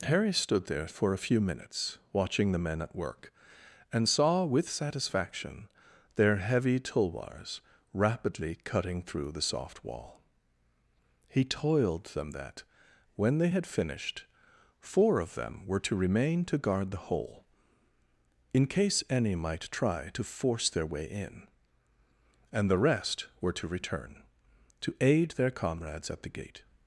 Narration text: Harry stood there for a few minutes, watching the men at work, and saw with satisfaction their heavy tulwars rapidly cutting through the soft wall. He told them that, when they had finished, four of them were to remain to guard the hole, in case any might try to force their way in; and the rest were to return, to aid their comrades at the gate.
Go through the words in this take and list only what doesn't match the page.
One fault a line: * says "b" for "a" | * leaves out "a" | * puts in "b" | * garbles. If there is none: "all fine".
* says "toiled" for "told"